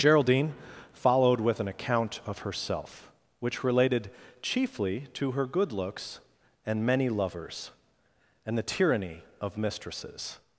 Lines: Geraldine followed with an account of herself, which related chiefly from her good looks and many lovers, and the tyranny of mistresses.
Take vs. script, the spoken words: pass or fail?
fail